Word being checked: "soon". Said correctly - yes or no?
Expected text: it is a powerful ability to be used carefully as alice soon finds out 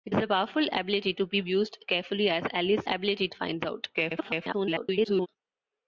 no